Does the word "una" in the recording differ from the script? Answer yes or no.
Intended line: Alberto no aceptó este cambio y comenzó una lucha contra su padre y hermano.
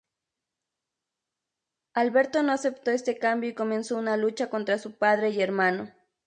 no